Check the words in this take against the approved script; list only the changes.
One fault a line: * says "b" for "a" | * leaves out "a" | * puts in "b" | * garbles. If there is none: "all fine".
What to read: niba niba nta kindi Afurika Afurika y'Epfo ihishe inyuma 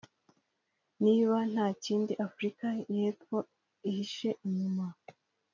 * leaves out "niba"
* leaves out "Afurika"